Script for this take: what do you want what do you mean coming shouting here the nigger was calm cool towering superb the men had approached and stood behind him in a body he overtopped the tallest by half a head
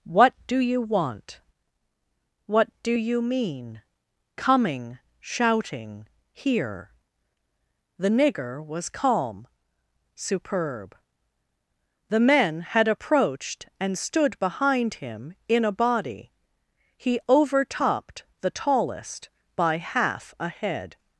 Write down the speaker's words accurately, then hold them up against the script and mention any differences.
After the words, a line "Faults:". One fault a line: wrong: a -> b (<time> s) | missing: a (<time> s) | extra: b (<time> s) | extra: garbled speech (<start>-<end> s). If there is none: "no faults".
what do you want what do you mean coming shouting here the nigger was calm superb the men had approached and stood behind him in a body he overtopped the tallest by half a head
Faults:
missing: cool towering (9.5 s)